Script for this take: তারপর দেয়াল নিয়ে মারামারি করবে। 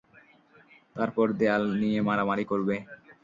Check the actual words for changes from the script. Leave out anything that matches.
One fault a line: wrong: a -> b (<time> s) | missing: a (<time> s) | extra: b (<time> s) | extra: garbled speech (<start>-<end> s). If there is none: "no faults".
no faults